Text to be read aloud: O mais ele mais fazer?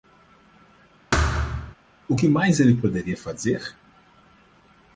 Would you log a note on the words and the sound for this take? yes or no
yes